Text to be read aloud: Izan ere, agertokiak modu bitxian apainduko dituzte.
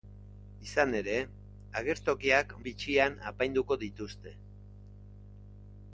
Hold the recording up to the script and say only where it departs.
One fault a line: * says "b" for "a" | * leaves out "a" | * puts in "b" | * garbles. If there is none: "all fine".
* leaves out "modu"